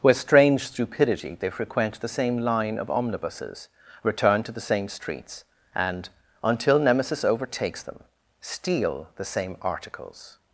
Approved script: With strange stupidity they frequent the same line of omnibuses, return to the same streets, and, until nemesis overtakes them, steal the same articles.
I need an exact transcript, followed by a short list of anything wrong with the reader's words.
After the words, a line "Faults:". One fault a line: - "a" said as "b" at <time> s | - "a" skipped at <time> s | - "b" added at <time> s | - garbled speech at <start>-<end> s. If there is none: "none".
With strange stupidity they frequent the same line of omnibuses, return to the same streets, and, until nemesis overtakes them, steal the same articles.
Faults:
none